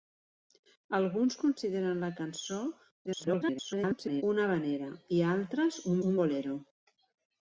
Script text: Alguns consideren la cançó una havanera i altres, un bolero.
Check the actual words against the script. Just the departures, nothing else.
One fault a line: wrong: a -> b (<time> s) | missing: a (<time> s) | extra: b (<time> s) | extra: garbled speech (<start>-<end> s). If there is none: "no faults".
extra: garbled speech (3.1-4.2 s)
extra: un (6.1 s)